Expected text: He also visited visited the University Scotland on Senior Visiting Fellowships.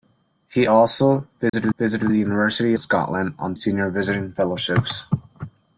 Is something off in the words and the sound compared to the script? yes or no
yes